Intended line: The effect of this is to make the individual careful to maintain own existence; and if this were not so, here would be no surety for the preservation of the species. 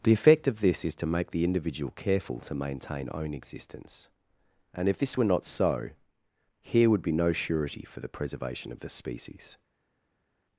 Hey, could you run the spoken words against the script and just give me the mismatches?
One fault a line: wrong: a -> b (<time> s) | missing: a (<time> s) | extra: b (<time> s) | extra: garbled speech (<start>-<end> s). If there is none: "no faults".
no faults